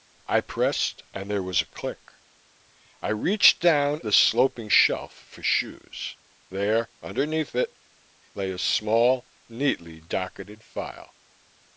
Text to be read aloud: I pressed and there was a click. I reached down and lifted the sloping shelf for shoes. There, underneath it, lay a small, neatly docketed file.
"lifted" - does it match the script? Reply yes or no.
no